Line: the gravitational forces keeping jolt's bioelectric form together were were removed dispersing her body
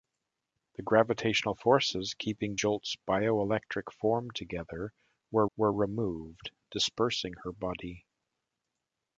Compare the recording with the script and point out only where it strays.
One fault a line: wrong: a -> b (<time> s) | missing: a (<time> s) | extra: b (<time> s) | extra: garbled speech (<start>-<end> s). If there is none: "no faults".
no faults